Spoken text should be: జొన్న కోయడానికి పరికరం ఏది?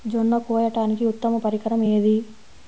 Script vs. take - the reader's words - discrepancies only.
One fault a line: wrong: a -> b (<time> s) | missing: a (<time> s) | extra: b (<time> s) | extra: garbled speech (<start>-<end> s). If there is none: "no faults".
extra: ఉత్తమ (1.1 s)